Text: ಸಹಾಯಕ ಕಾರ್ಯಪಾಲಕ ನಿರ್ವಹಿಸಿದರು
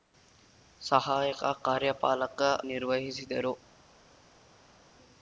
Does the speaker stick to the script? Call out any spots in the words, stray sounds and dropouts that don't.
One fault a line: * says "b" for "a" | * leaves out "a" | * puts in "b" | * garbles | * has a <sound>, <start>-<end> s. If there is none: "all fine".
all fine